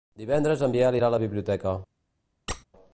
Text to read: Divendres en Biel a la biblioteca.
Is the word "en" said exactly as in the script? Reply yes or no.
yes